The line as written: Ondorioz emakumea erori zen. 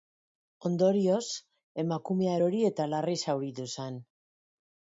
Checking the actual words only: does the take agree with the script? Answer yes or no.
no